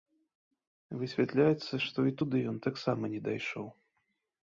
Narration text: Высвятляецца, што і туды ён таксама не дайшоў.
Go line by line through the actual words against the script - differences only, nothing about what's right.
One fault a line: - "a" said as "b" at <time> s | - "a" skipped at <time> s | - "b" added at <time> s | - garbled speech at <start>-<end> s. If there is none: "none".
none